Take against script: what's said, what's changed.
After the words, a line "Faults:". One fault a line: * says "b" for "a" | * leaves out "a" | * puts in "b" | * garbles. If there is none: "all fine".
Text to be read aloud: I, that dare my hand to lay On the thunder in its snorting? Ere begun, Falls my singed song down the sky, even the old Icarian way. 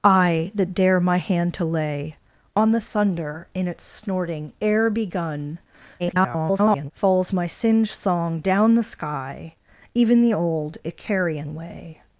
I, that dare my hand to lay On the thunder in its snorting? Ere begun, [garbled] Falls my singed song down the sky, even the old Icarian way.
Faults:
* garbles